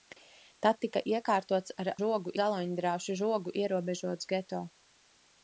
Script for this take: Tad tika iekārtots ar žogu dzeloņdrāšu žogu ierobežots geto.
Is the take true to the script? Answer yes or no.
yes